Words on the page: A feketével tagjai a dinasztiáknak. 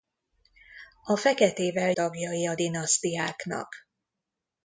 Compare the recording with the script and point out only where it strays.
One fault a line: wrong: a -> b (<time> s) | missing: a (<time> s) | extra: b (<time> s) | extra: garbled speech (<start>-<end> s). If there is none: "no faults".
no faults